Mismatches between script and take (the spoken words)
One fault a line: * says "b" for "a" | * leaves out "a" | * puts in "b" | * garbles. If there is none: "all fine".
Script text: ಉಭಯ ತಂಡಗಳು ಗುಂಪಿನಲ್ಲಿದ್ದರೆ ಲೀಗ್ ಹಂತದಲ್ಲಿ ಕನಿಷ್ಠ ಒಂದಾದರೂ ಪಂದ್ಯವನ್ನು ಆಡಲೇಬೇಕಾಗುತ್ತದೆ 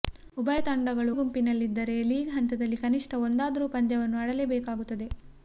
all fine